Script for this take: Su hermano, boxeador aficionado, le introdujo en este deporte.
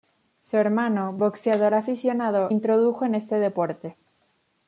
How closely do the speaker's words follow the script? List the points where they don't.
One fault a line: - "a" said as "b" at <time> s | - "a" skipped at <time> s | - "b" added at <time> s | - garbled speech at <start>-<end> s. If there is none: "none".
- "le" skipped at 2.5 s